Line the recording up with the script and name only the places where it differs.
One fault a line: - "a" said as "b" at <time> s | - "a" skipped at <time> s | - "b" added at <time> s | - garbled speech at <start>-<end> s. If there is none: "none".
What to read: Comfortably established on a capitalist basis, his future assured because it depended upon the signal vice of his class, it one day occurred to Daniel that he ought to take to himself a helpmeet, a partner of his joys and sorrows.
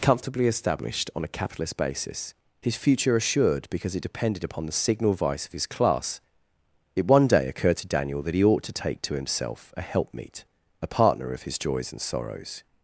none